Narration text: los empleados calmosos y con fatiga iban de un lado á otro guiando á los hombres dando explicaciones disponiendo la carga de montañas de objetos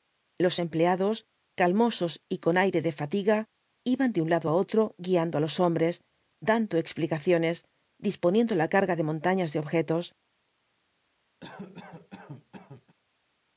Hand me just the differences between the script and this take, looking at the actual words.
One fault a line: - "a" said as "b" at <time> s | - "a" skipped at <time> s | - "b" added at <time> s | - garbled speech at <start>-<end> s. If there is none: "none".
- "aire de" added at 2.6 s